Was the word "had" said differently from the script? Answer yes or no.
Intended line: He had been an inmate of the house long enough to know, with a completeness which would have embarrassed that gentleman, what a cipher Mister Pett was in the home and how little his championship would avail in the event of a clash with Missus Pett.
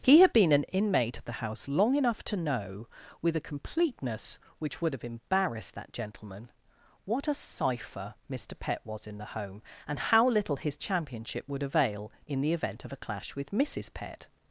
no